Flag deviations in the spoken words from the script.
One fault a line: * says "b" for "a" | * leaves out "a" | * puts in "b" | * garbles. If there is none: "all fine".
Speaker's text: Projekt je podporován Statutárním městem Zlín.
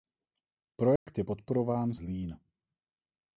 * leaves out "Statutárním městem"